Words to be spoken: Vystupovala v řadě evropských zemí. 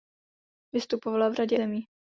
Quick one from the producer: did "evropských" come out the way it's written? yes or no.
no